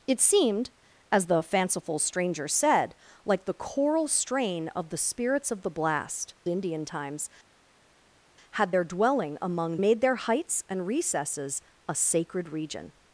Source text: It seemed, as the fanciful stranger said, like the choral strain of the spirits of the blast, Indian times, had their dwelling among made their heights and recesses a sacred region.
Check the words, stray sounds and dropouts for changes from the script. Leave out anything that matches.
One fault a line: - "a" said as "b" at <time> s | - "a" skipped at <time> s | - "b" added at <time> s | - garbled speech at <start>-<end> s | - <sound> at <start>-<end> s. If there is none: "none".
none